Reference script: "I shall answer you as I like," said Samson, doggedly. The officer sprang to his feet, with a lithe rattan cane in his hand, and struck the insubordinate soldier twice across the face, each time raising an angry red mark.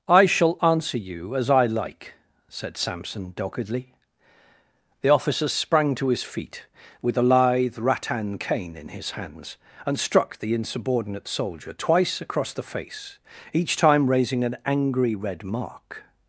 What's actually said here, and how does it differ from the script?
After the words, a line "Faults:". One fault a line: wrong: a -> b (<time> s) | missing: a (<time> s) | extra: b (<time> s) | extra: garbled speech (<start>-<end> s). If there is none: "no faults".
"I shall answer you as I like," said Samson, doggedly. The officer sprang to his feet, with a lithe rattan cane in his hands, and struck the insubordinate soldier twice across the face, each time raising an angry red mark.
Faults:
wrong: hand -> hands (9.1 s)